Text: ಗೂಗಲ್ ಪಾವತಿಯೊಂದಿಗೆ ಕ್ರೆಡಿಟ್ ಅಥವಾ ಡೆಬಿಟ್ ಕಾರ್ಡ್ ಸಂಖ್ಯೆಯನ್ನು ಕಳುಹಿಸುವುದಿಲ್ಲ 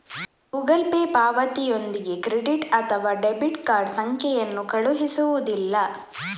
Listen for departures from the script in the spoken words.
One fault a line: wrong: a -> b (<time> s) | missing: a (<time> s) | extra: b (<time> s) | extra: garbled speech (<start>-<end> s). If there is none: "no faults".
extra: ಪೇ (0.8 s)